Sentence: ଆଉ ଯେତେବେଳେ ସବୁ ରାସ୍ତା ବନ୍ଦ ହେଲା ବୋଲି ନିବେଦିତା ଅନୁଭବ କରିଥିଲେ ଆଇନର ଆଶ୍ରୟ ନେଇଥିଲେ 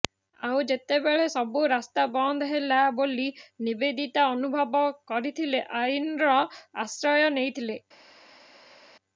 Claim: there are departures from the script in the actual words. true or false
false